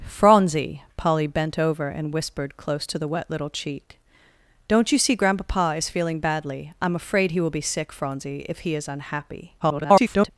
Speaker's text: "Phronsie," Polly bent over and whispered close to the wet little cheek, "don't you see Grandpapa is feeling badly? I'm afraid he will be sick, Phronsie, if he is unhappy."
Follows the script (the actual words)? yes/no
no